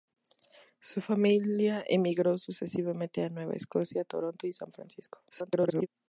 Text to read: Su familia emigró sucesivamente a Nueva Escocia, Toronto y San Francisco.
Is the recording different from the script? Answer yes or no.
yes